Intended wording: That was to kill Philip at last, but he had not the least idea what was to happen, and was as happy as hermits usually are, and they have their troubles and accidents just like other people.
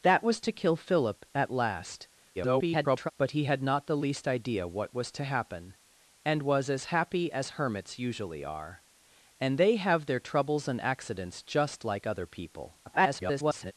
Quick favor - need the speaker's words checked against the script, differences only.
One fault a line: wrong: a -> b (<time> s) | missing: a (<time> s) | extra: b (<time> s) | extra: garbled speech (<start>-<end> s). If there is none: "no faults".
extra: garbled speech (2.4-3.1 s)
extra: garbled speech (12.9-13.7 s)